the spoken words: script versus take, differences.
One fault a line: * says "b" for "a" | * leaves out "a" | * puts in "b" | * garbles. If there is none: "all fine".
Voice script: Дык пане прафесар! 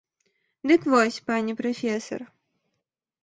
* puts in "вось"